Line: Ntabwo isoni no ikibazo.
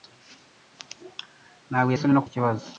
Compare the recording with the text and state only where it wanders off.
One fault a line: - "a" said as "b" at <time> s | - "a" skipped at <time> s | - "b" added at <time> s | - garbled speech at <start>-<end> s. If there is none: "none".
none